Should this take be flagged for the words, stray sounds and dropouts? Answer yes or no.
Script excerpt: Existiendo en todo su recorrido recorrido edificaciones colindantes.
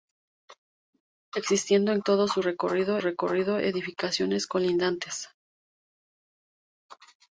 no